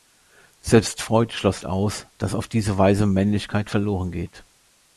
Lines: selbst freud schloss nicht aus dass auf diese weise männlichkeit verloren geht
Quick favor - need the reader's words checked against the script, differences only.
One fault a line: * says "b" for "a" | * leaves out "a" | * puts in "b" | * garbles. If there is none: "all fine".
* leaves out "nicht"